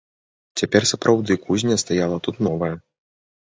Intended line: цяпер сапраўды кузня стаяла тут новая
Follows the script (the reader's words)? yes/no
yes